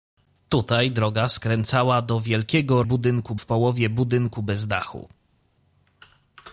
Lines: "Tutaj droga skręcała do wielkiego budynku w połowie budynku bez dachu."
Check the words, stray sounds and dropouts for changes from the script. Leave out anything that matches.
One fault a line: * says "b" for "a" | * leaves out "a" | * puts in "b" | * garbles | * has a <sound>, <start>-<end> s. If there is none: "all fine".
all fine